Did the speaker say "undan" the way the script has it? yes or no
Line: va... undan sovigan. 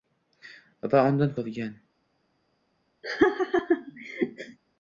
yes